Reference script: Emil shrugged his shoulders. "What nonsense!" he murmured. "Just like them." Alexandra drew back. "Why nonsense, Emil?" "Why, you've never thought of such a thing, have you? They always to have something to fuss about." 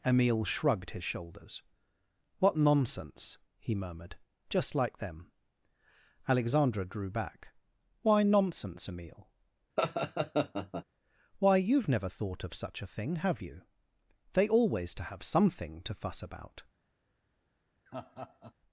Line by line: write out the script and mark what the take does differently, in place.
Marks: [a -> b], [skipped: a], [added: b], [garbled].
Emil shrugged his shoulders. "What nonsense!" he murmured. "Just like them." Alexandra drew back. "Why nonsense, Emil?" "Why, you've never thought of such a thing, have you? They always to have something to fuss about."